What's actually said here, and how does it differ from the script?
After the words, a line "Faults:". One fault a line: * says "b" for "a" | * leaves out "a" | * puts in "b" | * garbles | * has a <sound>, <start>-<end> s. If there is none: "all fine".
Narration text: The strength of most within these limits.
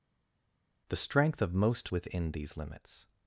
The strength of most within these limits.
Faults:
all fine